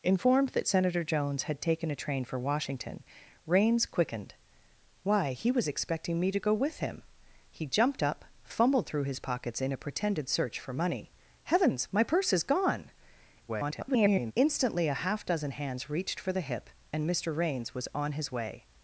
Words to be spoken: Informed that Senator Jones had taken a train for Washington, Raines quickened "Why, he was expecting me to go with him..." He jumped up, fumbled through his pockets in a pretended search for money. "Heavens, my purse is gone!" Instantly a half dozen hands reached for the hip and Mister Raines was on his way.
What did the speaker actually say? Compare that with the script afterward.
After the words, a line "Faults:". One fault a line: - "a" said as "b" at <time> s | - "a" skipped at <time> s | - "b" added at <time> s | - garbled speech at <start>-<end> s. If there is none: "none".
Informed that Senator Jones had taken a train for Washington, Raines quickened "Why, he was expecting me to go with him..." He jumped up, fumbled through his pockets in a pretended search for money. "Heavens, my purse is gone!" [garbled] Instantly a half dozen hands reached for the hip and Mister Raines was on his way.
Faults:
- garbled speech at 13.5-14.3 s